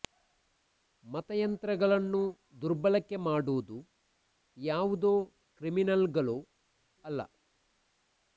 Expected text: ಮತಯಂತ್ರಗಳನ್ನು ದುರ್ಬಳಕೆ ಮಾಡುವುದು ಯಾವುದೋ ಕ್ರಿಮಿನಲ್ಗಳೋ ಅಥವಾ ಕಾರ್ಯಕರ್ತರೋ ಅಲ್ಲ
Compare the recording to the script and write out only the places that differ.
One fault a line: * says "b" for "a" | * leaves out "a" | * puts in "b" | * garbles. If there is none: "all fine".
* leaves out "ಅಥವಾ ಕಾರ್ಯಕರ್ತರೋ"